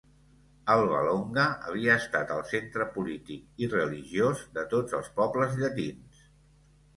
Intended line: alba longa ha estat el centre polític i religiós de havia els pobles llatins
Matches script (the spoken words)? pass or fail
fail